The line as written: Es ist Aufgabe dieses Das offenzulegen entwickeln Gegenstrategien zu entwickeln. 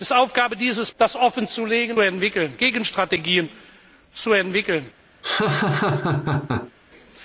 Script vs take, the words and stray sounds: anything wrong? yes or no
yes